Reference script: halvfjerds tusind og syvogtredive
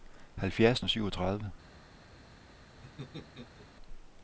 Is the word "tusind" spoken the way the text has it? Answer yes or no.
no